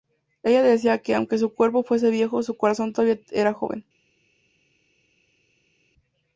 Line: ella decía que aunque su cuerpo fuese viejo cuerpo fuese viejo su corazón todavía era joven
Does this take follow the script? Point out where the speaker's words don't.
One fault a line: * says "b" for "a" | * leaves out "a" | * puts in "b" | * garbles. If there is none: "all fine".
* leaves out "cuerpo fuese viejo"